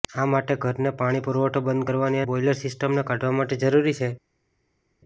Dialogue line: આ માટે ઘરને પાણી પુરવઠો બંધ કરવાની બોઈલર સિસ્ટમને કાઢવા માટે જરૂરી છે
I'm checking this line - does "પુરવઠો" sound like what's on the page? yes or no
yes